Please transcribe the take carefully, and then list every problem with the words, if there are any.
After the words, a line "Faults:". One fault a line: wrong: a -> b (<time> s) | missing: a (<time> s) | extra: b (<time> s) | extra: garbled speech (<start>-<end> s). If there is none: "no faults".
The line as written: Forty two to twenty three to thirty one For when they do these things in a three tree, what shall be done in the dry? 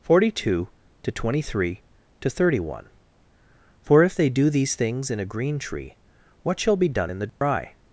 Forty two to twenty three to thirty one For if they do these things in a green tree, what shall be done in the dry?
Faults:
wrong: when -> if (4.0 s)
wrong: three -> green (5.2 s)